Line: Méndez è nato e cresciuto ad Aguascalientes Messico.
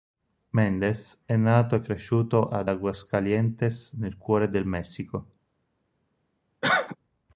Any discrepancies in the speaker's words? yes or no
yes